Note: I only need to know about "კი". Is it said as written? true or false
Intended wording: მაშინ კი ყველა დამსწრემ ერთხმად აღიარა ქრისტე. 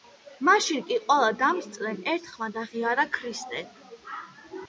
true